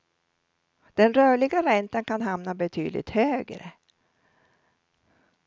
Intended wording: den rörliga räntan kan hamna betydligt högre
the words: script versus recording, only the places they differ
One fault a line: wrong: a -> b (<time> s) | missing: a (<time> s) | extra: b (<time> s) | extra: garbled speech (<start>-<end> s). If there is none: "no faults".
no faults